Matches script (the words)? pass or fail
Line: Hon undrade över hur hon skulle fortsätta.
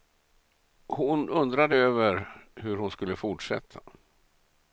pass